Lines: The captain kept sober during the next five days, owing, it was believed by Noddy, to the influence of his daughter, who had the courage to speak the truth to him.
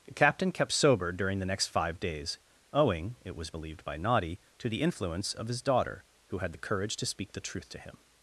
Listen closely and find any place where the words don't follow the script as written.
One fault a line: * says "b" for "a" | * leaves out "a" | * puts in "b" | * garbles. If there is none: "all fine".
all fine